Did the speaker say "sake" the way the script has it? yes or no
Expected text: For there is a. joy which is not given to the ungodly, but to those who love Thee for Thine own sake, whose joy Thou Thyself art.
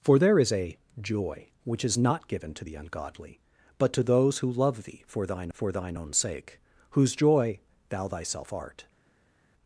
yes